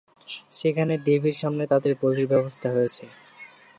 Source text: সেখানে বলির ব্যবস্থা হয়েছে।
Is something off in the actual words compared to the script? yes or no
yes